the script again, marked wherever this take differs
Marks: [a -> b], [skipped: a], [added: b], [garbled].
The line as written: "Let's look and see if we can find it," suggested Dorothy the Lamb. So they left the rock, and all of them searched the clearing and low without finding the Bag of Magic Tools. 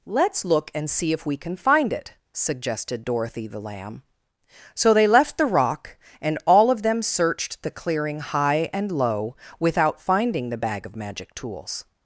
"Let's look and see if we can find it," suggested Dorothy the Lamb. So they left the rock, and all of them searched the clearing [added: high] and low without finding the Bag of Magic Tools.